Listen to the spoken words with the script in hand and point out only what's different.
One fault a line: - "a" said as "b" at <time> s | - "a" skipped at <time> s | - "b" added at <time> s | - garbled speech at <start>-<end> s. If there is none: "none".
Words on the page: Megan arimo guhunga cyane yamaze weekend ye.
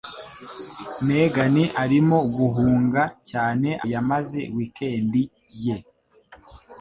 none